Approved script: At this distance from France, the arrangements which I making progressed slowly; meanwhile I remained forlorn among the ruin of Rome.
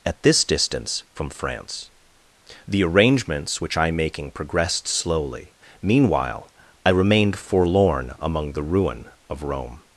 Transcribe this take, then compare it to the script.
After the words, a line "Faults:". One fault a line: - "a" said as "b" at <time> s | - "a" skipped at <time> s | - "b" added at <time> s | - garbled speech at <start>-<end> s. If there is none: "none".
At this distance from France, the arrangements which I making progressed slowly; meanwhile I remained forlorn among the ruin of Rome.
Faults:
none